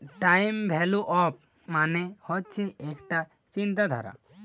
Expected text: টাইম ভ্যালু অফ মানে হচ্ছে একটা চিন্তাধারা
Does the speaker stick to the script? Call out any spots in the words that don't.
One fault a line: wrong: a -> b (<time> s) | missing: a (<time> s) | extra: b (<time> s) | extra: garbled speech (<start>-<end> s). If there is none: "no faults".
no faults